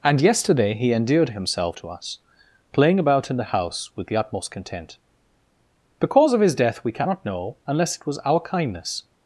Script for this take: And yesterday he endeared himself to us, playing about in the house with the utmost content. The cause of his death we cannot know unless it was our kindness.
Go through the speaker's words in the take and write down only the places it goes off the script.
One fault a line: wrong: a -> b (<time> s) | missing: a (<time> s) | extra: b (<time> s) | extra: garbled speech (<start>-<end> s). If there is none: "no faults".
no faults